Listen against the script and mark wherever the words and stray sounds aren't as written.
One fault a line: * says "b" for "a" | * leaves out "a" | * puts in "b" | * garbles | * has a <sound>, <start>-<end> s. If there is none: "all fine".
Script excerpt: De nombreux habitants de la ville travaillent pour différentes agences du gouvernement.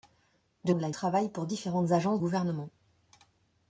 * leaves out "nombreux habitants"
* leaves out "ville"
* leaves out "du"